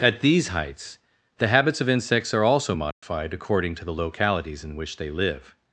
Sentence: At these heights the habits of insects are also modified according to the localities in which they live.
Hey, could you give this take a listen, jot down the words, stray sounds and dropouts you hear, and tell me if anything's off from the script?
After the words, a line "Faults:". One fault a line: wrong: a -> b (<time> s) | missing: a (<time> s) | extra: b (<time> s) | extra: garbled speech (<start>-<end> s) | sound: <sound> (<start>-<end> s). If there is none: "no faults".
At these heights the habits of insects are also modified according to the localities in which they live.
Faults:
sound: dropout (2.9-3.0 s)